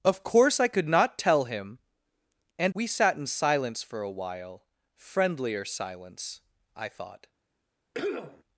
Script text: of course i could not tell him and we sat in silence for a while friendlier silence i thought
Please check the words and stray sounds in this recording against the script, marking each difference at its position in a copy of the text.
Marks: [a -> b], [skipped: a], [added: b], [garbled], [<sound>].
of course i could not tell him and we sat in silence for a while friendlier silence i thought [cough]